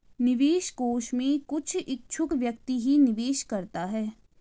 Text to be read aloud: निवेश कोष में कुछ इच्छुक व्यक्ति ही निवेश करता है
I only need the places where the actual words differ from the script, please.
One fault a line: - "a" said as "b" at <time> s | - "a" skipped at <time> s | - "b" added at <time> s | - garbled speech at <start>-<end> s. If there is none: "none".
none